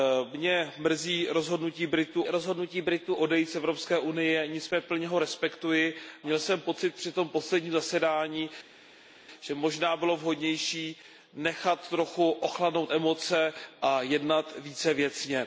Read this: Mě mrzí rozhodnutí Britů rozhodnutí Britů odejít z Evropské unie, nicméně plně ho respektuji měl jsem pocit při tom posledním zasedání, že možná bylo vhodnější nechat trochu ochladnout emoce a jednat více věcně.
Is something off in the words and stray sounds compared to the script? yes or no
no